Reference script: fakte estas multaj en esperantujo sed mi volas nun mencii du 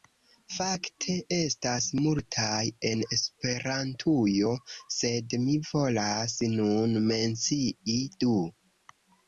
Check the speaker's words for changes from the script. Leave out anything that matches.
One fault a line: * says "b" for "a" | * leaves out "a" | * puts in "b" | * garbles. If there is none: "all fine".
all fine